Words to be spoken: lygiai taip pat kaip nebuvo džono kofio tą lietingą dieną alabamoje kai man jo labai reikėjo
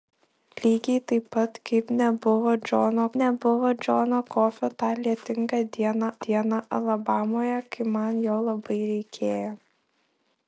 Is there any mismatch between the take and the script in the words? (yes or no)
yes